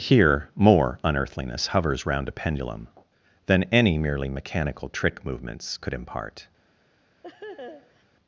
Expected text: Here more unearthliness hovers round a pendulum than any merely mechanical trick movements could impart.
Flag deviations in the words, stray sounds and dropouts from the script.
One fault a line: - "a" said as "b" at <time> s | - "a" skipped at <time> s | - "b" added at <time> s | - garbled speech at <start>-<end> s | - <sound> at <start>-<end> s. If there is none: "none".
- laugh at 7.2-8.0 s